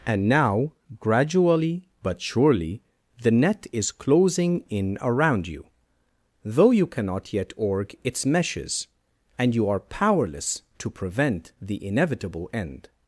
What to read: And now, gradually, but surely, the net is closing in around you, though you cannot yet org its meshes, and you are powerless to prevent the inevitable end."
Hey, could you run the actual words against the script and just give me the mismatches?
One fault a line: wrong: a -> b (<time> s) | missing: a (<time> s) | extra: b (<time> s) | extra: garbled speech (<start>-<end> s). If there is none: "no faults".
no faults